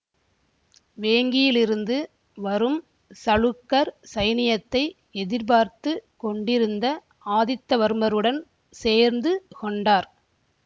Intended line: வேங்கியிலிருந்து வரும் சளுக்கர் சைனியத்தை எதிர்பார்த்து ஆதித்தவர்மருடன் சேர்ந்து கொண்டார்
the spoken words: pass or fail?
fail